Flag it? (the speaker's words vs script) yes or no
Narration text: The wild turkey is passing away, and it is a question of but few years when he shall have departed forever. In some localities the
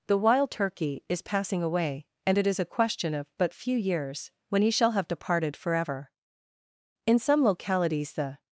no